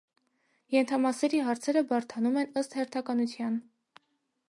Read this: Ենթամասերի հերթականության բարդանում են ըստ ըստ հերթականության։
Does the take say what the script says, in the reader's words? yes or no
no